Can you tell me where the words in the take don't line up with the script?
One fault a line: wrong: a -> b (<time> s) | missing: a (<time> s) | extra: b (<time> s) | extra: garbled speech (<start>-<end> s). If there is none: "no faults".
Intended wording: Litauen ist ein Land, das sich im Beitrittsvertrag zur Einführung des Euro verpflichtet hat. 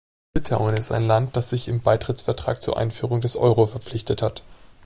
no faults